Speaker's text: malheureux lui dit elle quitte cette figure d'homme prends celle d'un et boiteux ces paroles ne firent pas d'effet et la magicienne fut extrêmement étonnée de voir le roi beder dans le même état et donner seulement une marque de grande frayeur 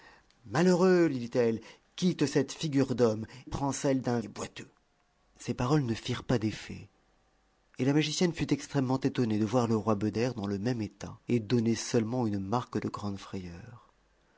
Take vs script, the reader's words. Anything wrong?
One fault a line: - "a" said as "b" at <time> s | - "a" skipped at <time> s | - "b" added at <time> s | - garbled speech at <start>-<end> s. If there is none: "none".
none